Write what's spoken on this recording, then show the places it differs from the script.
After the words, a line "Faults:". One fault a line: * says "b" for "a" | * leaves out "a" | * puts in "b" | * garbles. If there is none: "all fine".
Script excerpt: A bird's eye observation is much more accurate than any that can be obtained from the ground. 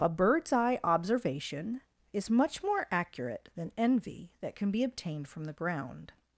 A bird's eye observation is much more accurate than envy that can be obtained from the ground.
Faults:
* says "envy" for "any"